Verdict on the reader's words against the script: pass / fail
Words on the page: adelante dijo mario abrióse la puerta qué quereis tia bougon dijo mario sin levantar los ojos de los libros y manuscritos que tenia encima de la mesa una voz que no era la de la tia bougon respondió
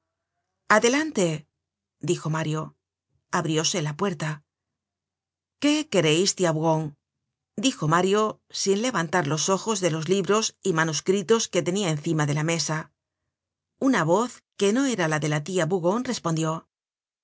pass